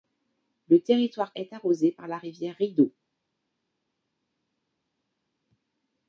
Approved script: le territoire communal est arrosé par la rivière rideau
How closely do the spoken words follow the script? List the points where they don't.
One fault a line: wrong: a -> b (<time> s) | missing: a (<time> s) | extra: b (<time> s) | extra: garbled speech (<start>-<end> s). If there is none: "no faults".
missing: communal (1.3 s)